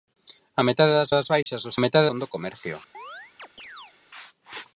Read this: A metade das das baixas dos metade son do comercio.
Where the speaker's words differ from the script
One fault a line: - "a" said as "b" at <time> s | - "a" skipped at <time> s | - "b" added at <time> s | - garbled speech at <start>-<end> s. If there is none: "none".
none